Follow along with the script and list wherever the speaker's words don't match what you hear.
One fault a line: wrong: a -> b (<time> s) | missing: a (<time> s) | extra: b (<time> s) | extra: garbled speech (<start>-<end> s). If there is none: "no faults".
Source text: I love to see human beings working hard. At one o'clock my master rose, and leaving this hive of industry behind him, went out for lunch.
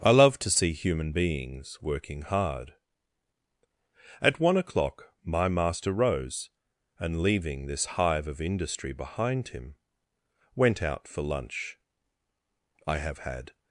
extra: I have had (12.9 s)